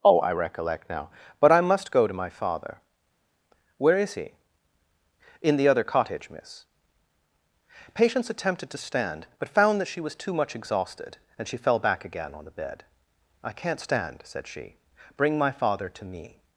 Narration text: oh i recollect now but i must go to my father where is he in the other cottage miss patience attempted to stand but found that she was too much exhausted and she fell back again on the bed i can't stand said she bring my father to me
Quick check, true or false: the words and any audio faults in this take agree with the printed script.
true